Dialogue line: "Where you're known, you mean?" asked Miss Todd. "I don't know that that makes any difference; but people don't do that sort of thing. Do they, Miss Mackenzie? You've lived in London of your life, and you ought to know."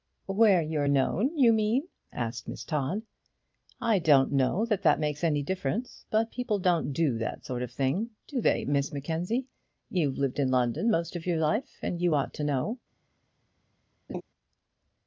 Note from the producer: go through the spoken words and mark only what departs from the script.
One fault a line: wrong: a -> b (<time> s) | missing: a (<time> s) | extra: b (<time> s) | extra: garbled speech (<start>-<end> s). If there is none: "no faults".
extra: most (10.9 s)